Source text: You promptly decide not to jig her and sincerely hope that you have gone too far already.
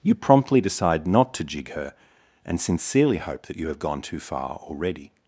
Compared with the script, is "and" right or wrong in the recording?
right